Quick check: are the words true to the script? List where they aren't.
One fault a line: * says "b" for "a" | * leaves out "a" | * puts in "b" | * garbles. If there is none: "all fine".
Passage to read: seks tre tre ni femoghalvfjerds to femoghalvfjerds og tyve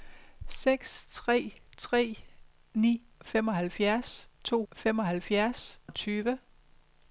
all fine